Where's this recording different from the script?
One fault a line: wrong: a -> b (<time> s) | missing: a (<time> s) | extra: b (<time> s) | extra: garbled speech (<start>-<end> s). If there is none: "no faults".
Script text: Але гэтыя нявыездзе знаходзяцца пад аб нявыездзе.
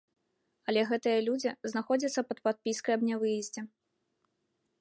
wrong: нявыездзе -> людзі (1.3 s)
extra: падпіскай (2.5 s)